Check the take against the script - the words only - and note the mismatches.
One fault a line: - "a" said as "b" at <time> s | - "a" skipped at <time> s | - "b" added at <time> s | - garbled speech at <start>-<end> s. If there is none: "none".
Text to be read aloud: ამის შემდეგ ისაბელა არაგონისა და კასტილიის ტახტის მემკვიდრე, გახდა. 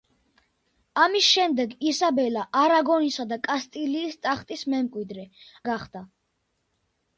none